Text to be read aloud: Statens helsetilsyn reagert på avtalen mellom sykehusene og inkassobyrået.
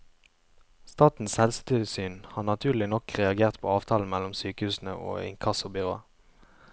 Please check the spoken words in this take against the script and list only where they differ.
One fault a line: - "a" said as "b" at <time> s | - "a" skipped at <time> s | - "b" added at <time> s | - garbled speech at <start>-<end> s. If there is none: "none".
- "har naturlig nok" added at 2.4 s